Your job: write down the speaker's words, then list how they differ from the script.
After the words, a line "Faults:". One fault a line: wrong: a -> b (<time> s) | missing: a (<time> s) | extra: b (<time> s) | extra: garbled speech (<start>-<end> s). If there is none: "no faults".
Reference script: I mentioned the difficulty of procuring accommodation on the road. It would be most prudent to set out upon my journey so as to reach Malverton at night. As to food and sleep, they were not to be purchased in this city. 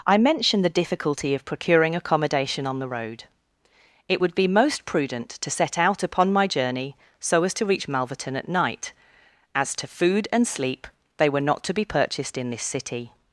I mentioned the difficulty of procuring accommodation on the road. It would be most prudent to set out upon my journey so as to reach Malverton at night. As to food and sleep, they were not to be purchased in this city.
Faults:
no faults